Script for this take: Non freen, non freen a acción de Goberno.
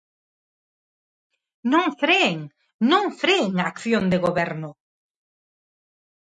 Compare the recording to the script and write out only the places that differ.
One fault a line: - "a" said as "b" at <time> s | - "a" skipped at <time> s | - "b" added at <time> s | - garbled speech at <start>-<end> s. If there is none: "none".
none